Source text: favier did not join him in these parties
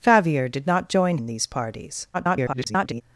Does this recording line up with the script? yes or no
no